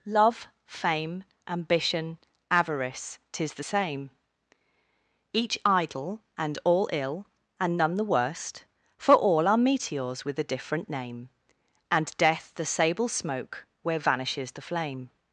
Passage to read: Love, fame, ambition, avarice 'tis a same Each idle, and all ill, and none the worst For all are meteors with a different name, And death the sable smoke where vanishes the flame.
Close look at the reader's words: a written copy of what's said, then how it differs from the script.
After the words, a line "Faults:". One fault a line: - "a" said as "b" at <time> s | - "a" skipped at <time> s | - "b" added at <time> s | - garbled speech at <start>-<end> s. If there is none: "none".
Love, fame, ambition, avarice 'tis the same Each idle, and all ill, and none the worst For all are meteors with a different name, And death the sable smoke where vanishes the flame.
Faults:
- "a" said as "the" at 3.5 s